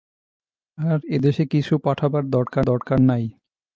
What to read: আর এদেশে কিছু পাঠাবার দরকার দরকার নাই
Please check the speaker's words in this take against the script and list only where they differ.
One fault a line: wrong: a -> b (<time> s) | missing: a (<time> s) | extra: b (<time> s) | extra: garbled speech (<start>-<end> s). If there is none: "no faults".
no faults